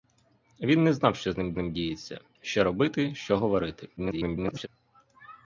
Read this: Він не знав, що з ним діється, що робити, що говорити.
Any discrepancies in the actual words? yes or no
yes